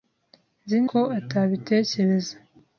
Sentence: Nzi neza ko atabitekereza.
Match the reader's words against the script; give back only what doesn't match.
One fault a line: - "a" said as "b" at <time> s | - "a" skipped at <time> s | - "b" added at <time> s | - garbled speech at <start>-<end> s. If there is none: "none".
- "neza" skipped at 0.8 s